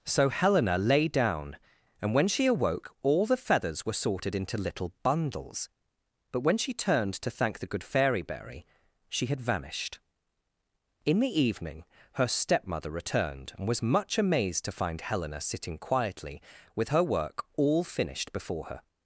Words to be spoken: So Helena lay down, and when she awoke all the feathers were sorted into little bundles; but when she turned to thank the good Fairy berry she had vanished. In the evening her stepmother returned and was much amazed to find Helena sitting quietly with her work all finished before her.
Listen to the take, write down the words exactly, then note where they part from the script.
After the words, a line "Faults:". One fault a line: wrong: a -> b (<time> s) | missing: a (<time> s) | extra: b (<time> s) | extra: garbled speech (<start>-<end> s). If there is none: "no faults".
So Helena lay down, and when she awoke all the feathers were sorted into little bundles; but when she turned to thank the good Fairy berry she had vanished. In the evening her stepmother returned and was much amazed to find Helena sitting quietly with her work all finished before her.
Faults:
no faults